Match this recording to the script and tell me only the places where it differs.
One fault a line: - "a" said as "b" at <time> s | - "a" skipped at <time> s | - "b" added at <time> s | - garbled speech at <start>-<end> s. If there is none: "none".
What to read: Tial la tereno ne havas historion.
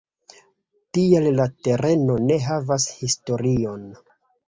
none